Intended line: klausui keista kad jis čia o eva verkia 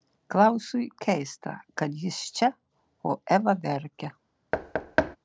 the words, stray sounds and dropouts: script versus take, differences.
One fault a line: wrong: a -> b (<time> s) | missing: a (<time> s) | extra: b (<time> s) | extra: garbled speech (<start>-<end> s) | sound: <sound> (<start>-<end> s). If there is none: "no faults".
sound: thud (4.5-5.2 s)